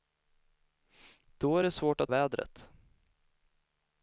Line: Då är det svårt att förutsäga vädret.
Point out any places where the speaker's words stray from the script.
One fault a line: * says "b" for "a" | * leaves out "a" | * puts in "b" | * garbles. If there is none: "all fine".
* leaves out "förutsäga"